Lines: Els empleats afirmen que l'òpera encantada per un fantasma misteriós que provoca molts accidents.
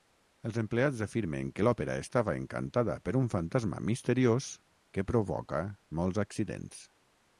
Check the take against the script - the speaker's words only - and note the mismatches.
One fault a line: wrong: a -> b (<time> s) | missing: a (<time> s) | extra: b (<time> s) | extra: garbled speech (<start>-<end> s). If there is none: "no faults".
extra: estava (2.0 s)